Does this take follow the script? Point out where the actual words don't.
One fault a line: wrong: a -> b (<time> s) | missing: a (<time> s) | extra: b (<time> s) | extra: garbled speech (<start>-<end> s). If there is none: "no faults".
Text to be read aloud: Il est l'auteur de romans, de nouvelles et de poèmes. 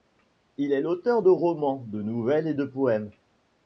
no faults